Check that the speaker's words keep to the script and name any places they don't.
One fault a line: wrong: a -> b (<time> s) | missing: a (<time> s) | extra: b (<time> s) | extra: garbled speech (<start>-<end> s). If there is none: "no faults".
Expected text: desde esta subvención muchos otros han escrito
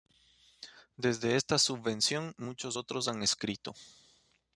no faults